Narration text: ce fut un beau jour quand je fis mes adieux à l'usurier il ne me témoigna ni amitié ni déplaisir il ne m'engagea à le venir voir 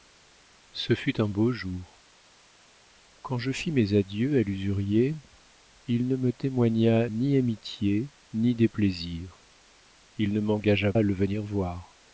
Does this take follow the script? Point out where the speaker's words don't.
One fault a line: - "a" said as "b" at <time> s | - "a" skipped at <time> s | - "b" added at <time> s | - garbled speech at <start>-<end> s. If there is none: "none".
none